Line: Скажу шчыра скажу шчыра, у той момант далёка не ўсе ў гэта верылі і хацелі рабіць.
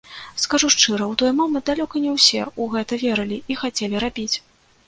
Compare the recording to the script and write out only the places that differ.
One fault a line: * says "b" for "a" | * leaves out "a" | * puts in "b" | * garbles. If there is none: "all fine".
* leaves out "скажу шчыра"